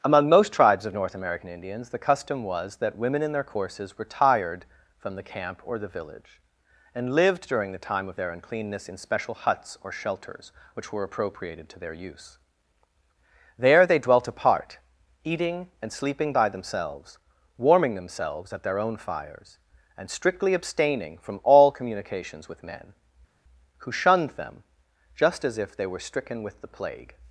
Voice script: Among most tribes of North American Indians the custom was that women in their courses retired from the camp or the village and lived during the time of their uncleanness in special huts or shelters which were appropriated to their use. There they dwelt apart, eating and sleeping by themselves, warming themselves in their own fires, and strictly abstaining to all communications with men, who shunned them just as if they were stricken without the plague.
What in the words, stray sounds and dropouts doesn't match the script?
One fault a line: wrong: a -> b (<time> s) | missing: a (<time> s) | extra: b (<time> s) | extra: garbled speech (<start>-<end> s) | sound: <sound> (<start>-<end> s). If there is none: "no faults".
wrong: in -> at (18.5 s)
wrong: to -> from (21.2 s)
wrong: without -> with (26.4 s)